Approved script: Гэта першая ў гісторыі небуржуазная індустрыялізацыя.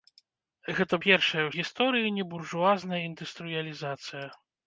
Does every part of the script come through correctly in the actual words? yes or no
yes